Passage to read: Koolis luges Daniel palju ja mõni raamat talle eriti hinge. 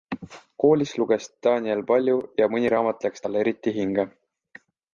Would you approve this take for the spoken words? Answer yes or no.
no